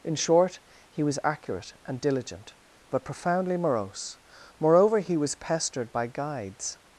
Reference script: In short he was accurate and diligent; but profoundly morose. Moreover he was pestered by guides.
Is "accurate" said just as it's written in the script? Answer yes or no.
yes